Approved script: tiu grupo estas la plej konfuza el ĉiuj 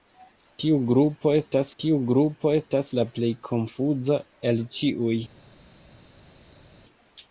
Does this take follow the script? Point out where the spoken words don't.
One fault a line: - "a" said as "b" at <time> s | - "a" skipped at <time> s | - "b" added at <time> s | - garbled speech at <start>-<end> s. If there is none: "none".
- "tiu grupo estas" added at 1.8 s